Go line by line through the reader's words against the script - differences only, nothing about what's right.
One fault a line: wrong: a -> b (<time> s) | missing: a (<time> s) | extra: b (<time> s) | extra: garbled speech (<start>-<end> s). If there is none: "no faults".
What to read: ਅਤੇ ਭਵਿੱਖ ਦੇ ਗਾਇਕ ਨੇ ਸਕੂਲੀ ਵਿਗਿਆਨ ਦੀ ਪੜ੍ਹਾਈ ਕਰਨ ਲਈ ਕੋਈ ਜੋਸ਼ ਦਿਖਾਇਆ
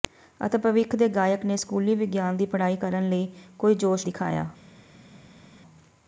no faults